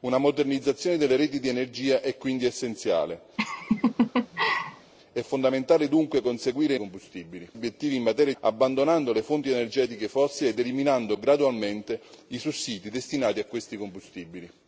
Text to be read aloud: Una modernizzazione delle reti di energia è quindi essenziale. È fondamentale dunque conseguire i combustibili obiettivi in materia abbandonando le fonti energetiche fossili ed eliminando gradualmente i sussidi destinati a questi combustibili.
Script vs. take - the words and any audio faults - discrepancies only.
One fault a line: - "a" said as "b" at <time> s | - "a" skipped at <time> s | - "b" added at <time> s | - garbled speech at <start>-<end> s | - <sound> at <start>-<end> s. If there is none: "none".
- laugh at 3.4-4.9 s